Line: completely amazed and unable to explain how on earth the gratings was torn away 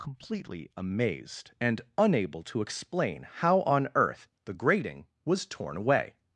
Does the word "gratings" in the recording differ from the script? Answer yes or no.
yes